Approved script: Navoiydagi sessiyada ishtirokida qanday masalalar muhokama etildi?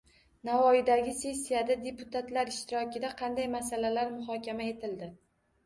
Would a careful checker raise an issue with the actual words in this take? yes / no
yes